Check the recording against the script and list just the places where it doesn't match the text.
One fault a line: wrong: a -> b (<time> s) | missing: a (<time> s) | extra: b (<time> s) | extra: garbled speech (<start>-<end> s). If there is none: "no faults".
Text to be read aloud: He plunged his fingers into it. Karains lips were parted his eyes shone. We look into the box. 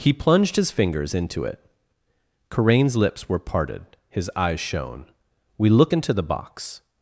no faults